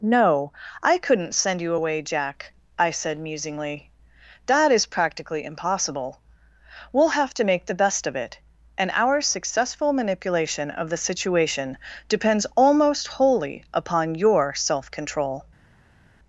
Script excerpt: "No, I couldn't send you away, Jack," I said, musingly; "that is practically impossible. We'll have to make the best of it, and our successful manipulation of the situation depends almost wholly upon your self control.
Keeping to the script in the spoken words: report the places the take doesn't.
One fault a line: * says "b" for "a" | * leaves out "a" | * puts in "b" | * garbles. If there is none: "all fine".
all fine